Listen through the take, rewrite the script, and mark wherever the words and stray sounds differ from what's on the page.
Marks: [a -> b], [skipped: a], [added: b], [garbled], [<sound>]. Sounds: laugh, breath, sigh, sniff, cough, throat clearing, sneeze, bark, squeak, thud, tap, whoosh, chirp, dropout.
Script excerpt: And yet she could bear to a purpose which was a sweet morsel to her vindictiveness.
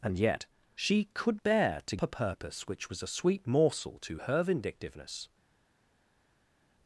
And yet she could bear to a purpose which was a sweet morsel to her vindictiveness.